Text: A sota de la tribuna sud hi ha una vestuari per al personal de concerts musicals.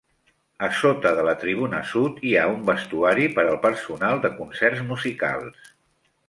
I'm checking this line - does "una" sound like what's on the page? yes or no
no